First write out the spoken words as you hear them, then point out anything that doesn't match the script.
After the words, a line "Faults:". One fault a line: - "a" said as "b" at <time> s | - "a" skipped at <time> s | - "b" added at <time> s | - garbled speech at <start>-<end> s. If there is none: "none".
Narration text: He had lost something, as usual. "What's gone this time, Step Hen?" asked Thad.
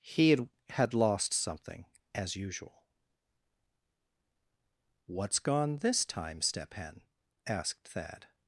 He had had lost something, as usual. "What's gone this time, Step Hen?" asked Thad.
Faults:
- "had" added at 0.7 s